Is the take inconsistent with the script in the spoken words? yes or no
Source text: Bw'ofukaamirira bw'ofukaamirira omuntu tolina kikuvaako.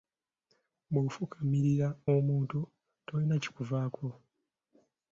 yes